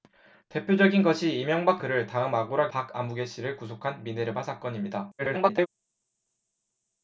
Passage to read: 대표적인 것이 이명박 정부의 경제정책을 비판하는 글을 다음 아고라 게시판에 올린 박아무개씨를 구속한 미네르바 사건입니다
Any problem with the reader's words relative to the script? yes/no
yes